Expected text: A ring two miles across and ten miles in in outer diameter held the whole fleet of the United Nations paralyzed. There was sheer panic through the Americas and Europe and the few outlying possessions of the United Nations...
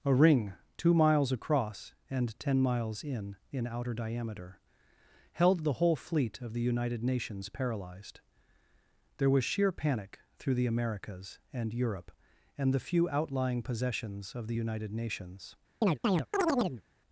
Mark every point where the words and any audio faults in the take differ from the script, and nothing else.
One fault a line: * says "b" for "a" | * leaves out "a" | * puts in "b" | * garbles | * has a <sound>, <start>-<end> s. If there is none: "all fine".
* has a chirp, 15.8-16.8 s